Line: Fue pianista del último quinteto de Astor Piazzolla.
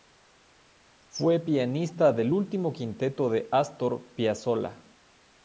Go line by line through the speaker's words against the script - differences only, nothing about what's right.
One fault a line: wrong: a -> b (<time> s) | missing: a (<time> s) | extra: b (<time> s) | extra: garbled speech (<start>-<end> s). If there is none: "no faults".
no faults